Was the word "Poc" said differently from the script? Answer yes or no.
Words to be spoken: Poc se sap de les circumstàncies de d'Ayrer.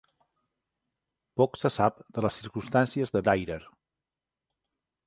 no